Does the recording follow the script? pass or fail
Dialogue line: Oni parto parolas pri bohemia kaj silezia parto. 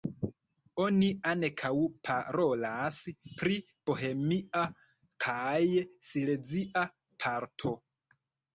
fail